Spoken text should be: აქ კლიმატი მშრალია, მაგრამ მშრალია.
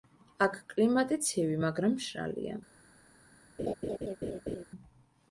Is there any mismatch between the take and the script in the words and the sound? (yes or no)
yes